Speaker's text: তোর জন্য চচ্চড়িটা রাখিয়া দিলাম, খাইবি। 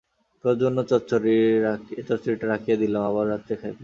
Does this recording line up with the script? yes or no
no